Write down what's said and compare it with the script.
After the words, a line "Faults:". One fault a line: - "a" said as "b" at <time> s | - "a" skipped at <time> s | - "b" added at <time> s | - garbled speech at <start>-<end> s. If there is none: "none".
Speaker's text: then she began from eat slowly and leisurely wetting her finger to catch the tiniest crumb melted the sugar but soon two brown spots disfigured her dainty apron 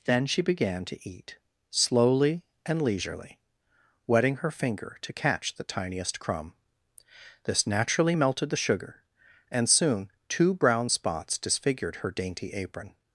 then she began to eat slowly and leisurely wetting her finger to catch the tiniest crumb this naturally melted the sugar and soon two brown spots disfigured her dainty apron
Faults:
- "from" said as "to" at 0.8 s
- "this naturally" added at 7.4 s
- "but" said as "and" at 9.5 s